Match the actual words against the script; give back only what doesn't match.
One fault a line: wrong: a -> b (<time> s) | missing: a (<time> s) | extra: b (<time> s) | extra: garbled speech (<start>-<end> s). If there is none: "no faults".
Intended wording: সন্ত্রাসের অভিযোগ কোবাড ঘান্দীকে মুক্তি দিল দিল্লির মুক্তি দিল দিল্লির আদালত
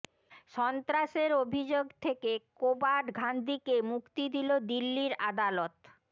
extra: থেকে (2.0 s)
missing: মুক্তি দিল দিল্লির (5.1 s)